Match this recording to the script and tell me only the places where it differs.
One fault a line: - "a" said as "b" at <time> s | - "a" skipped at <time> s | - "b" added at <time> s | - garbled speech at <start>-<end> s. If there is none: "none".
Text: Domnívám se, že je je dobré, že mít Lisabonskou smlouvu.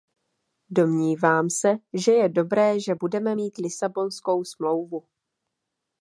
- "je" skipped at 2.3 s
- "budeme" added at 2.9 s